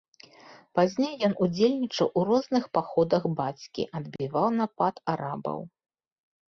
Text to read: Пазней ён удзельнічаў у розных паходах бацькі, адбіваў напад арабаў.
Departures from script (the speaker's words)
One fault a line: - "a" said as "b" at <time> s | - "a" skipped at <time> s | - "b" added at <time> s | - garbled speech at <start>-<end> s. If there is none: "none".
none